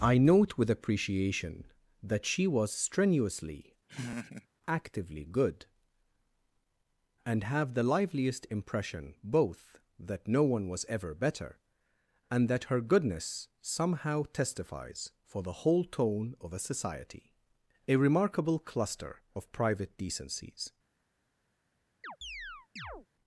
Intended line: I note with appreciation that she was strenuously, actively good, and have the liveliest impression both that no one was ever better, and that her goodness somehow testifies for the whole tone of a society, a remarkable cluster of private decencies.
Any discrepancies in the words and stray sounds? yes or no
yes